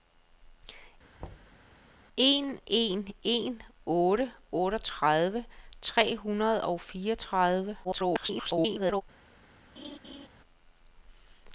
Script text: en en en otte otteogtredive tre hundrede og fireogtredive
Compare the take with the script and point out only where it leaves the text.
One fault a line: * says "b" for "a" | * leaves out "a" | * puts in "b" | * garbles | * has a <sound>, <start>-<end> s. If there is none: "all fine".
* has a thud, 1.2-1.6 s
* garbles
* has a laugh, 9.8-10.3 s